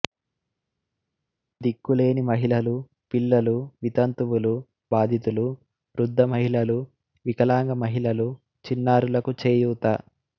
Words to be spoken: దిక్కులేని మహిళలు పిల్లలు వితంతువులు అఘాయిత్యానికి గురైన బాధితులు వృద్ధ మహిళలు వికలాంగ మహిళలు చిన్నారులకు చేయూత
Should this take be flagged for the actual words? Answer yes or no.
yes